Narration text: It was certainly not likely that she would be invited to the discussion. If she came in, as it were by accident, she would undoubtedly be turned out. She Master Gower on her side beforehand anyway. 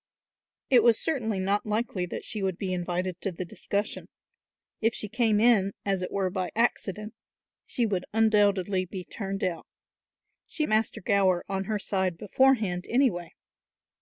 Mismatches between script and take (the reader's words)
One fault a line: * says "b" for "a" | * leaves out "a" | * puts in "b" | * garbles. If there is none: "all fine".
all fine